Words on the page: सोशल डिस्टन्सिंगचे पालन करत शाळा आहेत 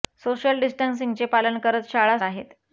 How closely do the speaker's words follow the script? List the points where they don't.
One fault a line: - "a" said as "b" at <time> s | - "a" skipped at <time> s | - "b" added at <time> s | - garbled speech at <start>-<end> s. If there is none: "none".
none